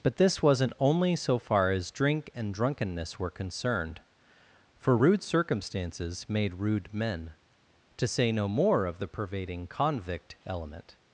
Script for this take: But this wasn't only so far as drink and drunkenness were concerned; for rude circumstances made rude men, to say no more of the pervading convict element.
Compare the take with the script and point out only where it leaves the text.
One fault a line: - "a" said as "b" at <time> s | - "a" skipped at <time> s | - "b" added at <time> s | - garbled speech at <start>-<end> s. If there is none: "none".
none